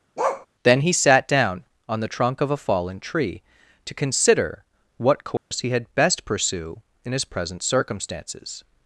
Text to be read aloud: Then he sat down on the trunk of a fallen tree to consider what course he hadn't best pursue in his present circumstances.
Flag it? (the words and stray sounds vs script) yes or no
yes